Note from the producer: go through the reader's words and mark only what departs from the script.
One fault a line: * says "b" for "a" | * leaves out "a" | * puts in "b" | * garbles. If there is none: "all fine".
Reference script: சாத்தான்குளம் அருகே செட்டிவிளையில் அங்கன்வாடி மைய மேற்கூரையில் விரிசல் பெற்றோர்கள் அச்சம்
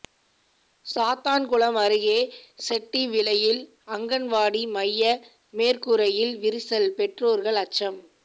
all fine